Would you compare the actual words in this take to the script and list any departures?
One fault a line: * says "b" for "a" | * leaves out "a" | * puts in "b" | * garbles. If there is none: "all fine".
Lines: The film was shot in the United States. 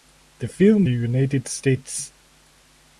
* leaves out "was shot in"